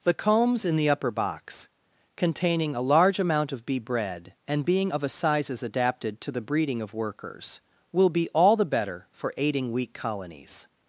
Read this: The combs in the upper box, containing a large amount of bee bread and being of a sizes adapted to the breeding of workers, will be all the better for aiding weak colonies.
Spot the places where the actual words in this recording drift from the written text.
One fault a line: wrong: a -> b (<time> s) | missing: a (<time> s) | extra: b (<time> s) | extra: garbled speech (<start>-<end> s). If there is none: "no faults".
no faults